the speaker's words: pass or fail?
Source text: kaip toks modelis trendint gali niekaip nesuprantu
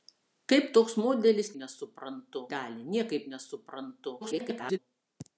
fail